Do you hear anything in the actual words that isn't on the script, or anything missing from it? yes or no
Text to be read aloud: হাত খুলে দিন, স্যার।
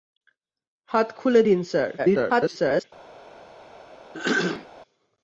yes